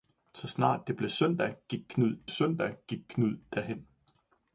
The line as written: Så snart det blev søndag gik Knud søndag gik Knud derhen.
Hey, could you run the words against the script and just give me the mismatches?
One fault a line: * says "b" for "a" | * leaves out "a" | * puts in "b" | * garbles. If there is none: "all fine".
all fine